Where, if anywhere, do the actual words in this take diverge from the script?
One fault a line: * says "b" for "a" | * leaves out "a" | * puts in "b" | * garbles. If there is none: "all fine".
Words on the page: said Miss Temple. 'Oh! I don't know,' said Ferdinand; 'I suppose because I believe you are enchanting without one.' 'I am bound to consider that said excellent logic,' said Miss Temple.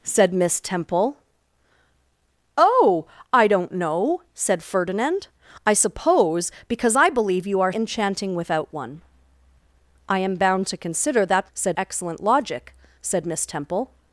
all fine